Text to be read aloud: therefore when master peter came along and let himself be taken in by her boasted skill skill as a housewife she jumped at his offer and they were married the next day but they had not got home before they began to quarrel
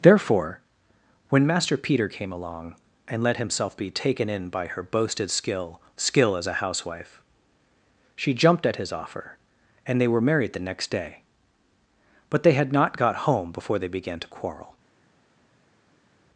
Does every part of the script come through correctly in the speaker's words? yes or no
yes